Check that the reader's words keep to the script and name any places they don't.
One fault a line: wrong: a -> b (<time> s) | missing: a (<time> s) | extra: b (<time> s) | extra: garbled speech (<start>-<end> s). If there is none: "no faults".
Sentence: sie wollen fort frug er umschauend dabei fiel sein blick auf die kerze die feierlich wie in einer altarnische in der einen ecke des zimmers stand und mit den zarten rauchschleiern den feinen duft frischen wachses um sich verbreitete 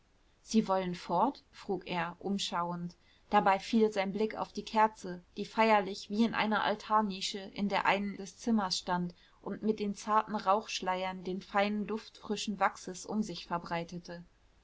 missing: ecke (8.2 s)